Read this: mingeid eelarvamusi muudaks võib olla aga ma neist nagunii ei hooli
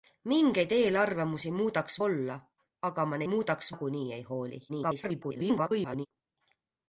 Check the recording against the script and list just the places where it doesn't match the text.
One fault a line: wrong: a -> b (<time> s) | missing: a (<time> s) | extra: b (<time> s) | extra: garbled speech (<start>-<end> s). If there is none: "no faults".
missing: võib (2.0 s)
wrong: neist -> muudaks (3.3 s)
extra: garbled speech (4.7-6.1 s)